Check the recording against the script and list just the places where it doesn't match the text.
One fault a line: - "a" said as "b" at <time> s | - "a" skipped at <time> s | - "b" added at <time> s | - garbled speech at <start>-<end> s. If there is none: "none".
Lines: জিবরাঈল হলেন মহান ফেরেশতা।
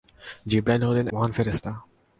none